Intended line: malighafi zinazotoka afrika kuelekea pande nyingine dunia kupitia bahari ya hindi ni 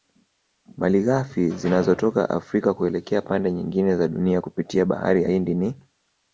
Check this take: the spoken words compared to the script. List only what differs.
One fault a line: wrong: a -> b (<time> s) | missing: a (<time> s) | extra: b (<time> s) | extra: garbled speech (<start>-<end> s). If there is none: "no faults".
extra: za (4.0 s)